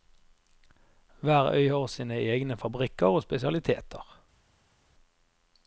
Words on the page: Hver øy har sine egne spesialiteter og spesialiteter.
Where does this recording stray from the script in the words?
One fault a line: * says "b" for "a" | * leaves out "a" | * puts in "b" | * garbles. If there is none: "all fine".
* says "fabrikker" for "spesialiteter"